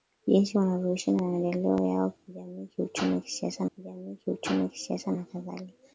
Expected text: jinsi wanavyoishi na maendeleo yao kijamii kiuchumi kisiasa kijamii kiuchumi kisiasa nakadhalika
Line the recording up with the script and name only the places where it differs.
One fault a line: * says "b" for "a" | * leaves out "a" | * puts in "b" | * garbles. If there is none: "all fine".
all fine